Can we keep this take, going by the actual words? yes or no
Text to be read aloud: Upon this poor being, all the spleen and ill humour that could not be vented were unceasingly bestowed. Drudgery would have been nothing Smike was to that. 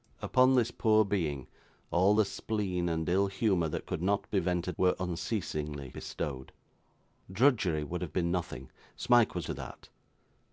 yes